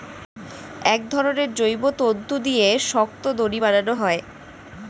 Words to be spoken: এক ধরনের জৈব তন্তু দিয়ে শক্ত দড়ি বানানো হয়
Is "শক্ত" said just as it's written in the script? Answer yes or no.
yes